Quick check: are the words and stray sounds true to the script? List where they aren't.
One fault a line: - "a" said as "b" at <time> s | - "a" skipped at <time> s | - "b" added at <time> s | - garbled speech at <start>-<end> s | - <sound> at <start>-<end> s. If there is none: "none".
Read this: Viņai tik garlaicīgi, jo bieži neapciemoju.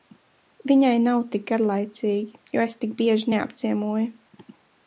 - "nav" added at 1.0 s
- "es tik" added at 2.6 s